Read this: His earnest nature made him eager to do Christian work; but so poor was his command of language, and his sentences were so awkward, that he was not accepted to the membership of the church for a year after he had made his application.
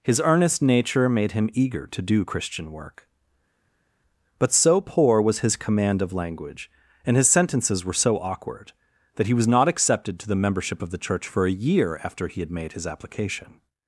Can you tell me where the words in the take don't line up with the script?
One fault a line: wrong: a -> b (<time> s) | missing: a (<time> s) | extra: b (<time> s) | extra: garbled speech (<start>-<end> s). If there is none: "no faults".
no faults